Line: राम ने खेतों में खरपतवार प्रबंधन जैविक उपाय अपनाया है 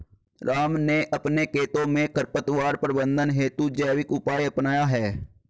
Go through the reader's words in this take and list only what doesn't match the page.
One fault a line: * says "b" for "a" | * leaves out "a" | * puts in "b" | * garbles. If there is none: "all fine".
* puts in "अपने"
* puts in "हेतु"